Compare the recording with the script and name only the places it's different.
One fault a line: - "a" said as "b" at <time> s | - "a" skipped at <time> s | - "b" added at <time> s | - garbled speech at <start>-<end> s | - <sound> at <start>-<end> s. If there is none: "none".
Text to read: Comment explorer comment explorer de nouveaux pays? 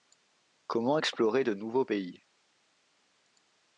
- "comment explorer" skipped at 1.4 s